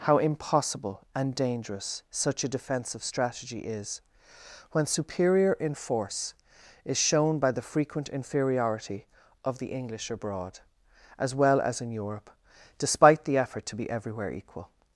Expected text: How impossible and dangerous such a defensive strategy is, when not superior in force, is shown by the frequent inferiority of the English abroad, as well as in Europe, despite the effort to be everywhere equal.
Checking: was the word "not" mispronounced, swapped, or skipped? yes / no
yes